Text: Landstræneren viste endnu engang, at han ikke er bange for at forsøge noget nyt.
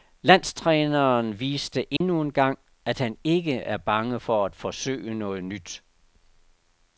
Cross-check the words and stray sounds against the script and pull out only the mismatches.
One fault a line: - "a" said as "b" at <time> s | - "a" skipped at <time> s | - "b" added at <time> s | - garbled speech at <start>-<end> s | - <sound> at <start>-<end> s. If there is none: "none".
- dropout at 2.0-2.0 s